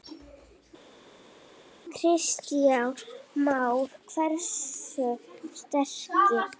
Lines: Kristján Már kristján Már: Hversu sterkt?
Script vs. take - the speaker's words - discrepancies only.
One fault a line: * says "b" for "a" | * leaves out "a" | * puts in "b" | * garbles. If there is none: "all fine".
* leaves out "kristján Már"